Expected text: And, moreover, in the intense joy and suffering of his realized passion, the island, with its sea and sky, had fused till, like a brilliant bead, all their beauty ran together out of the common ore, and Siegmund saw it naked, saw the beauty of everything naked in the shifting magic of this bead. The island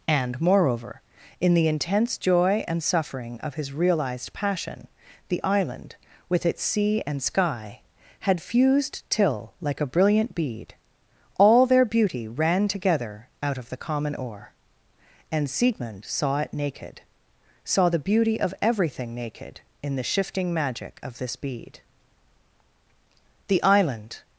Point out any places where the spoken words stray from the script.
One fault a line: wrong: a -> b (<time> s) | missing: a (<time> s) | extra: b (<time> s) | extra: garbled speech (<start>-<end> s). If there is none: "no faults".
no faults